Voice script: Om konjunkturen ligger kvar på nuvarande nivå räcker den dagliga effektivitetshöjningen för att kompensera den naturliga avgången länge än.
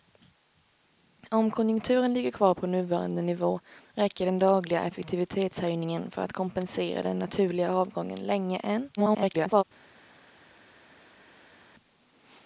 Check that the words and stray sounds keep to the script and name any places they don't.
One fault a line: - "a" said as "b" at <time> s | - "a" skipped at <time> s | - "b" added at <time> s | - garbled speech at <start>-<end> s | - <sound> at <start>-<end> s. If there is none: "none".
- garbled speech at 9.0-9.6 s